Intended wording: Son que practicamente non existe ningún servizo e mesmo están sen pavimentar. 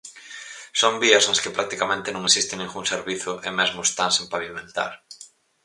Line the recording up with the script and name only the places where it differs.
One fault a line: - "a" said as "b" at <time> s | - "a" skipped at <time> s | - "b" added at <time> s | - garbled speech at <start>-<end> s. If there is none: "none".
- "vías nas" added at 1.0 s